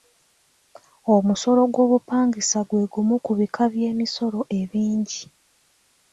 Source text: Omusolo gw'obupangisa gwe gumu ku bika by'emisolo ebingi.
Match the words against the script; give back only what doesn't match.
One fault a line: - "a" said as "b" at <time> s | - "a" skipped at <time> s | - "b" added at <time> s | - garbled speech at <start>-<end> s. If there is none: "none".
none